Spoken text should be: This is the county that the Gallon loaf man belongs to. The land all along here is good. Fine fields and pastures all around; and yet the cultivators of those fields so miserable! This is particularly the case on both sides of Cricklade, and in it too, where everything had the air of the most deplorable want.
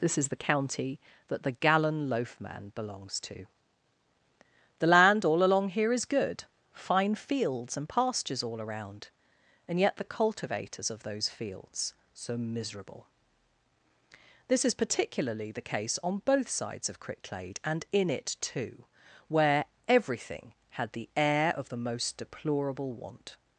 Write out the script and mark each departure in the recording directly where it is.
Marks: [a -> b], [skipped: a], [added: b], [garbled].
This is the county that the Gallon loaf man belongs to. The land all along here is good. Fine fields and pastures all around; and yet the cultivators of those fields so miserable! This is particularly the case on both sides of Cricklade, and in it too, where everything had the air of the most deplorable want.